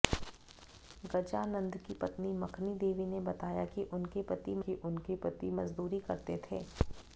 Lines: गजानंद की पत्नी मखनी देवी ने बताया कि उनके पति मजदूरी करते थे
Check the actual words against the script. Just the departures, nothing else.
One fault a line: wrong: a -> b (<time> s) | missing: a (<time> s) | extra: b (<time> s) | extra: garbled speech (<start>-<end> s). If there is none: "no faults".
extra: कि उनके पति (4.7 s)